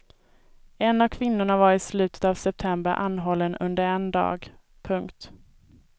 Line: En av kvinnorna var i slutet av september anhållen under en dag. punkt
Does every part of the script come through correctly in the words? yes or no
yes